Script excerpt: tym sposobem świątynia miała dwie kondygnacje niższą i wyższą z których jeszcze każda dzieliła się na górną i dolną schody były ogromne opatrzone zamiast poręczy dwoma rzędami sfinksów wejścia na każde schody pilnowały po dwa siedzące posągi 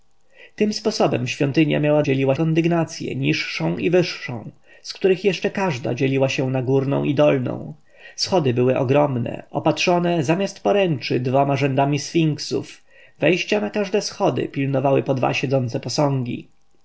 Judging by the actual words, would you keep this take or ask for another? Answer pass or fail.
fail